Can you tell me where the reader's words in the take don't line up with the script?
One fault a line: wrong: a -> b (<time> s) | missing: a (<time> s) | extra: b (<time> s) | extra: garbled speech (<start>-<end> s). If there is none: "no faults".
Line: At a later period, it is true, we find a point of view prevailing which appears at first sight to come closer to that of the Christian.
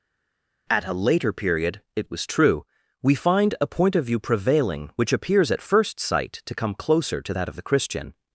wrong: is -> was (2.1 s)